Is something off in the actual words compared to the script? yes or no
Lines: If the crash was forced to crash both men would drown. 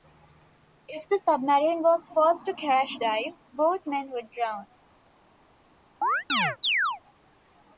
yes